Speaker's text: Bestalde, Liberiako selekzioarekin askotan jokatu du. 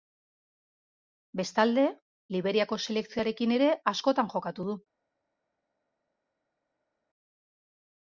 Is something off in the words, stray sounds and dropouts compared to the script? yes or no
yes